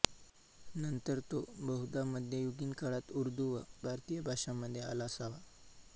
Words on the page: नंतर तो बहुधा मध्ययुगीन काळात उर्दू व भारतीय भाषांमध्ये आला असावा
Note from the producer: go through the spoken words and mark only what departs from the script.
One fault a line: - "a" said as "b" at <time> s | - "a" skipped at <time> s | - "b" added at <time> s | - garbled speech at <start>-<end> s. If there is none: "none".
none